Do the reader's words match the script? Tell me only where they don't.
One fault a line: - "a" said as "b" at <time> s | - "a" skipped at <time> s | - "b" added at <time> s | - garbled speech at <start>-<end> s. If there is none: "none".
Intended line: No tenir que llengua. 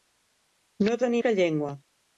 none